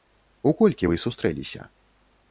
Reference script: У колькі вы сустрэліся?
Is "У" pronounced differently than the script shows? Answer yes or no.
no